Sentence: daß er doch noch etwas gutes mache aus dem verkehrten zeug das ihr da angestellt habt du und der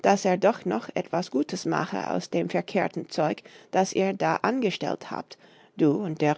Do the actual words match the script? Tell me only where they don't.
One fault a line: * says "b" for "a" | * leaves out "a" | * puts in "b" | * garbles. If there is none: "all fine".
all fine